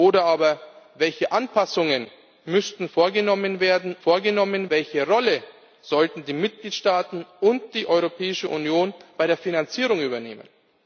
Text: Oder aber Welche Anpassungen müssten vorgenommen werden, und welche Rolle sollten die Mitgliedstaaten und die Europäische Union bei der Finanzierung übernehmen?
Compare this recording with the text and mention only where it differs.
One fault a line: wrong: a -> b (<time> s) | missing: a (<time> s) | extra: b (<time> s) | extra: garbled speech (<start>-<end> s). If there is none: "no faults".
wrong: und -> vorgenommen (4.0 s)